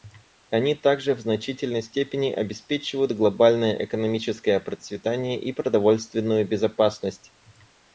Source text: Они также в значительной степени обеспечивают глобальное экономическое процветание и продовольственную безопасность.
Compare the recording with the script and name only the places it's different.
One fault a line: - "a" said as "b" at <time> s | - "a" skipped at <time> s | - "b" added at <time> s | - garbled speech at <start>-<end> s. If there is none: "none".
none